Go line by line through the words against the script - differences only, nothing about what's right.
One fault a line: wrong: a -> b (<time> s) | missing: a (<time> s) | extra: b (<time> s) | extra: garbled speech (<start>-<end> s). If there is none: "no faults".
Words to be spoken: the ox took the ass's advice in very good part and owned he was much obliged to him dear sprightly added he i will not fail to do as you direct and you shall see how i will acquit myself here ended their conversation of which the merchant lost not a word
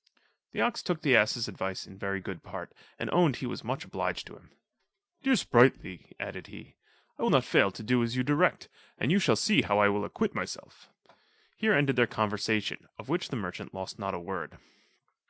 no faults